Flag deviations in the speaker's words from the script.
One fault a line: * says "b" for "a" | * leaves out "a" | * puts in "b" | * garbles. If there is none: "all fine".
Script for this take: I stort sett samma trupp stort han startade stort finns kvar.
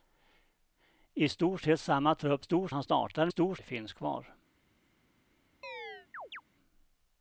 all fine